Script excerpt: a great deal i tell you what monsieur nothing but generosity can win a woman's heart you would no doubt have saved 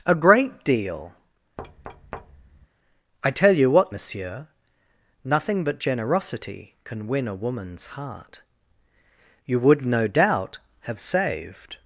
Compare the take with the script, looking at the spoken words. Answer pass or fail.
pass